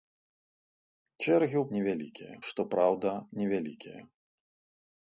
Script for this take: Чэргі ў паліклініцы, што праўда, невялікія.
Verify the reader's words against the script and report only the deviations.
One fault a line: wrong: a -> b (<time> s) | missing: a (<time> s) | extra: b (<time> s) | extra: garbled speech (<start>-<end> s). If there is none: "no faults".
wrong: паліклініцы -> невялікія (1.8 s)